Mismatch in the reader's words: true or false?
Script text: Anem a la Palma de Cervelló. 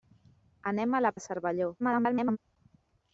true